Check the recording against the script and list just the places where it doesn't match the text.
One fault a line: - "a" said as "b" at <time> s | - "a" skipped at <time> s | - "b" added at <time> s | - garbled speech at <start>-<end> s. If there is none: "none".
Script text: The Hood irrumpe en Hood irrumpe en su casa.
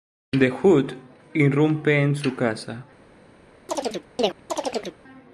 - "Hood irrumpe en" skipped at 2.1 s